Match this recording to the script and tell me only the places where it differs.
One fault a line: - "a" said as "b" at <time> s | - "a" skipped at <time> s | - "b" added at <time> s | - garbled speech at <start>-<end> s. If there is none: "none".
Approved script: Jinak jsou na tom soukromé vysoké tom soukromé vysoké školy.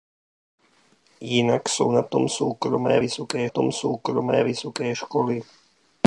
none